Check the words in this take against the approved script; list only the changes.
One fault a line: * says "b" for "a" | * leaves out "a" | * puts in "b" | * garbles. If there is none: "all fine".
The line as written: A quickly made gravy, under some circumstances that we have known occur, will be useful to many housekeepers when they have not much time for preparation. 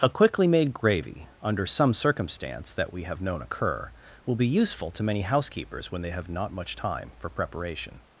* says "circumstance" for "circumstances"